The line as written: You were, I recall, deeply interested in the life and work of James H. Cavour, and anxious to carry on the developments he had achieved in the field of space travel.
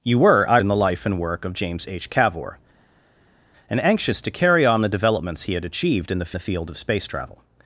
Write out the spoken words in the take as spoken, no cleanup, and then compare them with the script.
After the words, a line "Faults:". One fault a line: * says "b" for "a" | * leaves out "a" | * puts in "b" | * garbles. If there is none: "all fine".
You were, I in the life and work of James H. Cavour, and anxious to carry on the developments he had achieved in the the field of space travel.
Faults:
* leaves out "recall deeply interested"
* puts in "the"